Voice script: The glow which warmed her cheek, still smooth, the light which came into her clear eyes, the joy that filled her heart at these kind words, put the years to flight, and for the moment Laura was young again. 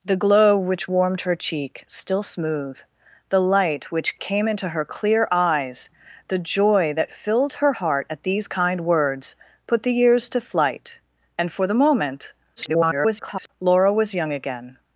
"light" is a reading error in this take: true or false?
false